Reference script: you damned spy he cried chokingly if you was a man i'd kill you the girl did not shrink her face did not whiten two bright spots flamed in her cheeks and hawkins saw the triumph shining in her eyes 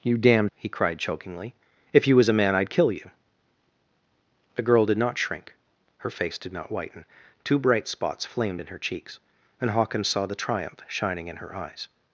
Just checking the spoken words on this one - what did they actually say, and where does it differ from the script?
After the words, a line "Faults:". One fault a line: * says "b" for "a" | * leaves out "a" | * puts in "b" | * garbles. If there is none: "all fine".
you damned he cried chokingly if you was a man i'd kill you the girl did not shrink her face did not whiten two bright spots flamed in her cheeks and hawkins saw the triumph shining in her eyes
Faults:
* leaves out "spy"